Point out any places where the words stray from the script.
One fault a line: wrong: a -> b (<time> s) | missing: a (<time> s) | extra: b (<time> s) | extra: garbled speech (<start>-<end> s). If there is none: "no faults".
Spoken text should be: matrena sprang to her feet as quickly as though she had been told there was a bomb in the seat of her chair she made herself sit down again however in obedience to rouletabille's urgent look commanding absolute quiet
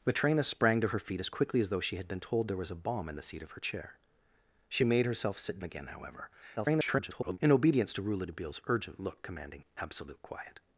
missing: down (5.6 s)
extra: garbled speech (6.6-7.4 s)